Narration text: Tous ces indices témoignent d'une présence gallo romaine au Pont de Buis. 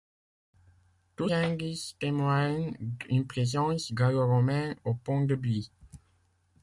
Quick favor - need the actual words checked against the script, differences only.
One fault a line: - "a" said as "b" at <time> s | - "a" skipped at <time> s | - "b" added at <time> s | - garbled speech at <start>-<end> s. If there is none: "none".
- "ces" skipped at 1.3 s